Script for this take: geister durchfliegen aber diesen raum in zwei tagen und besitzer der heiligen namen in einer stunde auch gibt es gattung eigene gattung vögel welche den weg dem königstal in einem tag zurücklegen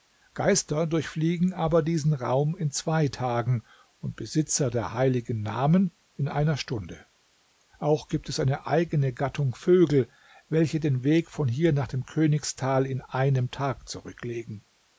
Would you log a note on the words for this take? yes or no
yes